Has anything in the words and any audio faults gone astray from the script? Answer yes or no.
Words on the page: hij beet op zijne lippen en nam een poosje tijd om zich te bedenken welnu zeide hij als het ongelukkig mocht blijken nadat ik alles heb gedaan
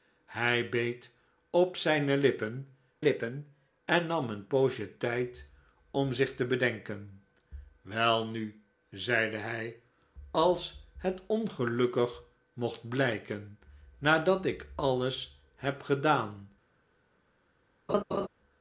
yes